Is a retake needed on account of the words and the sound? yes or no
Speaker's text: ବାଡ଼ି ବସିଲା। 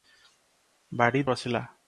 no